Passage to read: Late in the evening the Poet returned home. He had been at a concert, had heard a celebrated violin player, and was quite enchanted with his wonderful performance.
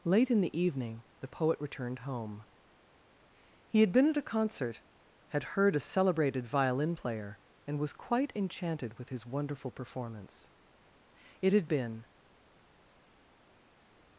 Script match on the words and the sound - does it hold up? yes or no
no